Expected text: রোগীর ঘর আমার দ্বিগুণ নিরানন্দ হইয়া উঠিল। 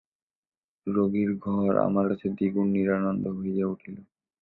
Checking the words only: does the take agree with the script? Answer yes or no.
no